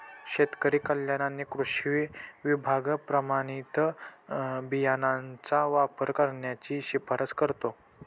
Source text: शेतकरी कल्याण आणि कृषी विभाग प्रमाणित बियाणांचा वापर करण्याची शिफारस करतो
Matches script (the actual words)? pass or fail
pass